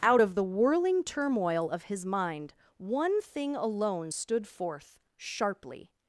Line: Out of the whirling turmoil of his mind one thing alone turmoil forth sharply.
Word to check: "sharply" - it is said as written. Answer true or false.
true